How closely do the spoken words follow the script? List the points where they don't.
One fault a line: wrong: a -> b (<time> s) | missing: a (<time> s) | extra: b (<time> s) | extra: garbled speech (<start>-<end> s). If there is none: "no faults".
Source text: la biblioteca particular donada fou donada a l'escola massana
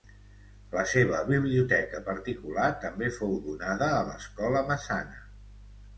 extra: seva (0.9 s)
wrong: donada -> també (2.9 s)